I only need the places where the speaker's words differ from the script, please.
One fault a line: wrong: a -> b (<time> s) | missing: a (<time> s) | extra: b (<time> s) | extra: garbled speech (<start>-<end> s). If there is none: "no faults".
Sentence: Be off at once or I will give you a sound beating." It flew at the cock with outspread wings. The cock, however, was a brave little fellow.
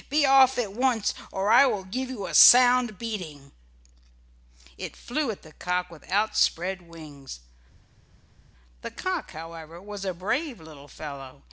no faults